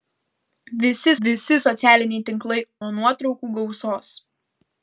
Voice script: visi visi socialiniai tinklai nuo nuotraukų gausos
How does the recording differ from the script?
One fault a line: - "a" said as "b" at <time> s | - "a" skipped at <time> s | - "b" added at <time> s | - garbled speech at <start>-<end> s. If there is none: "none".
none